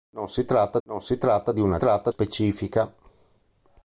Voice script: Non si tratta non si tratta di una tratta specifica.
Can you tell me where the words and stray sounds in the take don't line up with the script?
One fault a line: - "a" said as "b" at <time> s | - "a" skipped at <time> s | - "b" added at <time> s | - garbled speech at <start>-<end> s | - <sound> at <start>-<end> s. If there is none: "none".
none